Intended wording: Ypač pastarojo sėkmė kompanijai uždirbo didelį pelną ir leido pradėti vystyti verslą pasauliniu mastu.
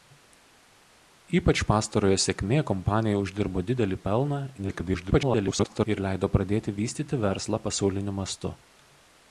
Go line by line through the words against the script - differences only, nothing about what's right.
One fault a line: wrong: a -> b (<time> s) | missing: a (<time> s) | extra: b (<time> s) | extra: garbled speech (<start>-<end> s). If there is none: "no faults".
extra: garbled speech (4.6-5.9 s)